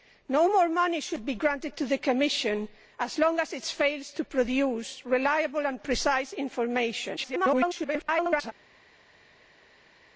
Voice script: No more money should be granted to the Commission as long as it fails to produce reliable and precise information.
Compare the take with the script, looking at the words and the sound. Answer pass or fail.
fail